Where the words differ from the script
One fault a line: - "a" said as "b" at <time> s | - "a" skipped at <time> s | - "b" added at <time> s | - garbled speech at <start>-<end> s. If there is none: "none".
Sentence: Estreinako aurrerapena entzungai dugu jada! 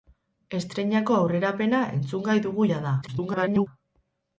- garbled speech at 3.0-3.7 s